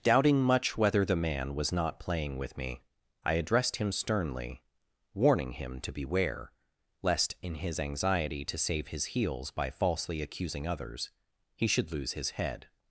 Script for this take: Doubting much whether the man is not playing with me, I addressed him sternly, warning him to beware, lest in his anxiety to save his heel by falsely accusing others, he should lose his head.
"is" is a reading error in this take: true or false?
true